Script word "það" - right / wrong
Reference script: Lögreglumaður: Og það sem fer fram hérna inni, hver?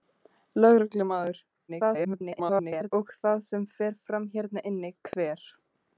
right